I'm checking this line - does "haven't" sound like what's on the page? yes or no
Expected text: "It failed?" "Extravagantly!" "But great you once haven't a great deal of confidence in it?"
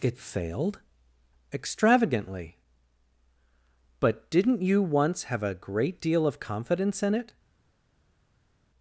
no